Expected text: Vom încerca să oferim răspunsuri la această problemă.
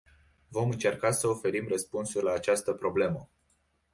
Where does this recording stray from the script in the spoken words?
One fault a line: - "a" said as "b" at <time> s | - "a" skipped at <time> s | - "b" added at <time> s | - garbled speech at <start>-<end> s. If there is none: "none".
none